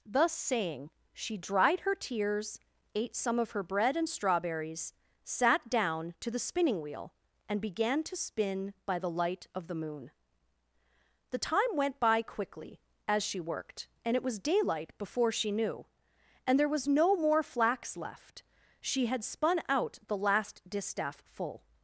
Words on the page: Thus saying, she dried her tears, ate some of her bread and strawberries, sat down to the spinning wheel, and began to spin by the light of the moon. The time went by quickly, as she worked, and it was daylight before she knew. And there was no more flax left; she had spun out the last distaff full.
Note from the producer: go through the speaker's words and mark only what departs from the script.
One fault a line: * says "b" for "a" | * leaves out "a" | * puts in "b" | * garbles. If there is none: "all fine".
all fine